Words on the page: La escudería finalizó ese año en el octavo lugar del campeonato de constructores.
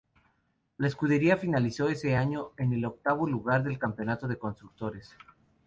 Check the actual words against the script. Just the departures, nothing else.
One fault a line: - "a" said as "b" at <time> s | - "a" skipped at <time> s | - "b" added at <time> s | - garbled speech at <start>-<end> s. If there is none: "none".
none